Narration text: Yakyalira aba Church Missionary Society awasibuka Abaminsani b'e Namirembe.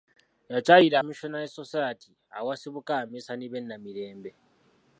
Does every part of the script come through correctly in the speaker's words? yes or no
no